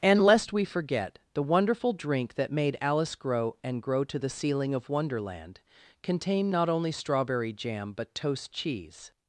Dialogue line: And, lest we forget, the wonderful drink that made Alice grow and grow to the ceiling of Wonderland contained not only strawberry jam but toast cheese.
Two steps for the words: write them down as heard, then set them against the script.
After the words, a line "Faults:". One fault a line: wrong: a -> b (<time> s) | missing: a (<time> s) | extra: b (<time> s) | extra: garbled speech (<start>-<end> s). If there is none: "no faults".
And, lest we forget, the wonderful drink that made Alice grow and grow to the ceiling of Wonderland contained not only strawberry jam but toast cheese.
Faults:
no faults